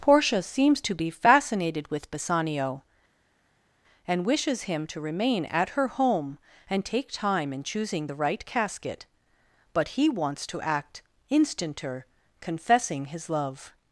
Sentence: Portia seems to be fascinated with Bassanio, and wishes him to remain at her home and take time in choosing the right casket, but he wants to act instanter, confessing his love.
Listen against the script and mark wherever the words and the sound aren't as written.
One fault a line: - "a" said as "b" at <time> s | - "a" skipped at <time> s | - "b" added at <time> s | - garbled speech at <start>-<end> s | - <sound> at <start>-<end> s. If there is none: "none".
none